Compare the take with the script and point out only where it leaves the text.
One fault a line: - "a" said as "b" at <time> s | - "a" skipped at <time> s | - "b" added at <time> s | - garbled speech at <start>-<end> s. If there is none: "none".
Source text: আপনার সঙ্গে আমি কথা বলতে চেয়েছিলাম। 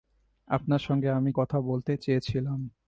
none